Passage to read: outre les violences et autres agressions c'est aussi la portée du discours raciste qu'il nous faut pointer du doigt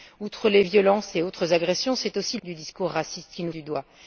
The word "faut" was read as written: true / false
false